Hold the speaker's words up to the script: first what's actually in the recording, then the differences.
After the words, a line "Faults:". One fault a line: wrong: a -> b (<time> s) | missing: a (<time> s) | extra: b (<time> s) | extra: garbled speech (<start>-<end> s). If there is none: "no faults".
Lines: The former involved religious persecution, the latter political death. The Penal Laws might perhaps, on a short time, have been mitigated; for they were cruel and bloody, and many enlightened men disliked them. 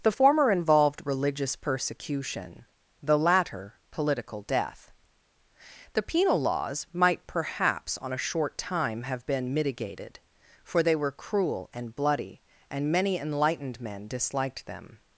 The former involved religious persecution, the latter political death. The Penal Laws might perhaps, on a short time, have been mitigated; for they were cruel and bloody, and many enlightened men disliked them.
Faults:
no faults